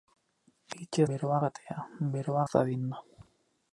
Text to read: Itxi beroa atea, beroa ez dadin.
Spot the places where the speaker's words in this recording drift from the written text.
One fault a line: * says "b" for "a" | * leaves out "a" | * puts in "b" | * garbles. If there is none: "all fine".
all fine